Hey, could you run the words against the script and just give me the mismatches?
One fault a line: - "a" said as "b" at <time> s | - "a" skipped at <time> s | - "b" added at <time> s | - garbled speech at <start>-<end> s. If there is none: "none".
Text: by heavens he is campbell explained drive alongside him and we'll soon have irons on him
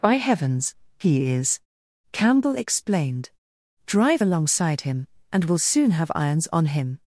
none